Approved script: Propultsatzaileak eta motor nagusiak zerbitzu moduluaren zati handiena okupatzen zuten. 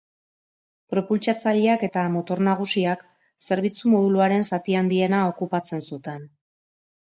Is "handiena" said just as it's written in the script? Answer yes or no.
yes